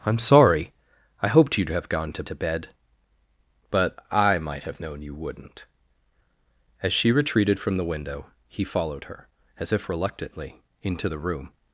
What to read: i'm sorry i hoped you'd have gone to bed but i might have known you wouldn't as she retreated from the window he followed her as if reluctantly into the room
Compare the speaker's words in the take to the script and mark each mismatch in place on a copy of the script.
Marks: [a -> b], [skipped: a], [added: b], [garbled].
i'm sorry i hoped you'd have gone to [added: to] bed but i might have known you wouldn't as she retreated from the window he followed her as if reluctantly into the room